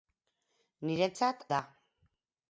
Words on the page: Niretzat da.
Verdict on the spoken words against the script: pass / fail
pass